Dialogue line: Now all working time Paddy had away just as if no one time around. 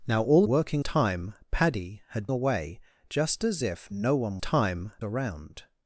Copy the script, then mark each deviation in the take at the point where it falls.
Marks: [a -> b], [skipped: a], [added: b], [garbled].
Now all working time Paddy had away just as if no one time around.